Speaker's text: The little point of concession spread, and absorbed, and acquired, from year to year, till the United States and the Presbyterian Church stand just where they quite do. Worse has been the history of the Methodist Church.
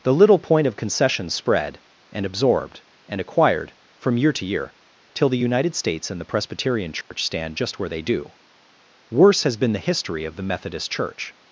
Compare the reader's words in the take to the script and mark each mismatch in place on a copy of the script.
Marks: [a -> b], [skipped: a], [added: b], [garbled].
The little point of concession spread, and absorbed, and acquired, from year to year, till the United States and the Presbyterian Church stand just where they [skipped: quite] do. Worse has been the history of the Methodist Church.